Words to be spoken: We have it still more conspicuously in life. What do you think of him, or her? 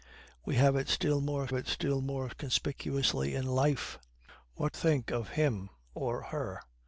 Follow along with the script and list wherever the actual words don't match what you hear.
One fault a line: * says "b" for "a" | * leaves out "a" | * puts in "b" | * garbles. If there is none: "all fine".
* puts in "it still more"
* leaves out "do you"